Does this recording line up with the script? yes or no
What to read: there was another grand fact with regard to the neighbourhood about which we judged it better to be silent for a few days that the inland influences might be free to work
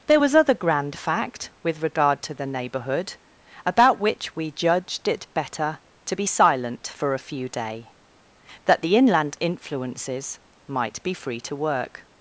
no